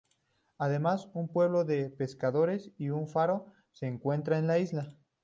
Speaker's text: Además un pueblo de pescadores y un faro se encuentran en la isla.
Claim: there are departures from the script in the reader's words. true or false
false